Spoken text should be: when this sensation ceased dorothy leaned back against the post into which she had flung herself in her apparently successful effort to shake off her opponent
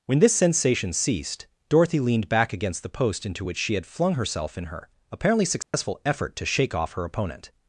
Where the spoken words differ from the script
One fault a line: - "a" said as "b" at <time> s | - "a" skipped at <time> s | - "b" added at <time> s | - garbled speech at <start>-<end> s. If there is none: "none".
none